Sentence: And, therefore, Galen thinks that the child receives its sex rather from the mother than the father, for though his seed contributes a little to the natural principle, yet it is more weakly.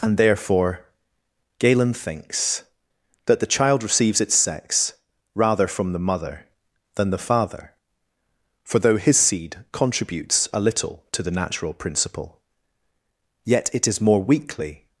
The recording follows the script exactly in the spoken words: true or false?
true